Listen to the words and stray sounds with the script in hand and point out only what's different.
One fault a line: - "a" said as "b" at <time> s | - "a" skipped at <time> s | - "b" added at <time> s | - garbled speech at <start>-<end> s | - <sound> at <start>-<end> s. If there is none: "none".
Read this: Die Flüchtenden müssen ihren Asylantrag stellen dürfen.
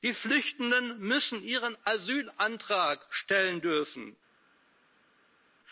none